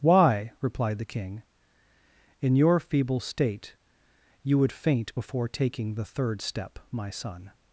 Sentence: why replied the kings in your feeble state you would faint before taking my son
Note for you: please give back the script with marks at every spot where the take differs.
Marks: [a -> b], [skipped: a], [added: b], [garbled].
why replied the [kings -> king] in your feeble state you would faint before taking [added: the third step] my son